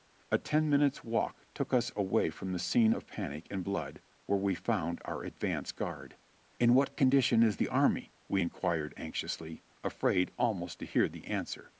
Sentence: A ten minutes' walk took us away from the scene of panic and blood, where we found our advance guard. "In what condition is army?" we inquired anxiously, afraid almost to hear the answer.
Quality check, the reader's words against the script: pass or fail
fail